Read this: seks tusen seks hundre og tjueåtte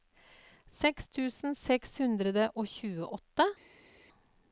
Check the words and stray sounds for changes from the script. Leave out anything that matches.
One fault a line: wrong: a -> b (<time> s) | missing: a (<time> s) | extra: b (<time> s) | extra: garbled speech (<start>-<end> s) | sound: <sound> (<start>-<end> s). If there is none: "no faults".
no faults